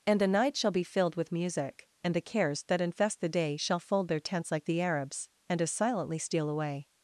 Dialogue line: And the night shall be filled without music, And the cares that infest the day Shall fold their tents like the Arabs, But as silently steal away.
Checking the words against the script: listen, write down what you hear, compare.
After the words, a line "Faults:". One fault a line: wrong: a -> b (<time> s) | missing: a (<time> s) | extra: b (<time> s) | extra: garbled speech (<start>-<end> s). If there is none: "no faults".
And the night shall be filled with music, And the cares that infest the day Shall fold their tents like the Arabs, And as silently steal away.
Faults:
wrong: without -> with (1.1 s)
wrong: But -> And (5.5 s)